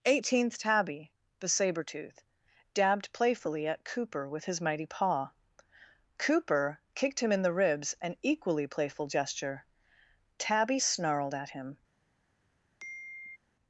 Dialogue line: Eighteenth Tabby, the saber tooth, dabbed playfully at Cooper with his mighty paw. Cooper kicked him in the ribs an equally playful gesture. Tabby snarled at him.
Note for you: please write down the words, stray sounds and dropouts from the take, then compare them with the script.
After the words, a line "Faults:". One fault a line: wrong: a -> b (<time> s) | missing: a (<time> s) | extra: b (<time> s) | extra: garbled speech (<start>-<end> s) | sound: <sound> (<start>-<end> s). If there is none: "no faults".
Eighteenth Tabby, the saber tooth, dabbed playfully at Cooper with his mighty paw. Cooper kicked him in the ribs an equally playful gesture. Tabby snarled at him.
Faults:
sound: sigh (12.8-13.4 s)